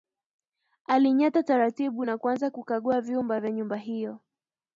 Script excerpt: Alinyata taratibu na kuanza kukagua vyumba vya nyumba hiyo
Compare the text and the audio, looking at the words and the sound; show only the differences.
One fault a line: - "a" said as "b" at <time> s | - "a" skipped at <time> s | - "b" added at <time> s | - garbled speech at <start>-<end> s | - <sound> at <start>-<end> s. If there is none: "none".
none